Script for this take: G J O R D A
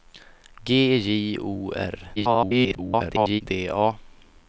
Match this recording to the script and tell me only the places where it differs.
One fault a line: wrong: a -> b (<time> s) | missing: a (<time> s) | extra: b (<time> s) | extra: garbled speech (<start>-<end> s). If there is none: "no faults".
extra: garbled speech (2.2-3.4 s)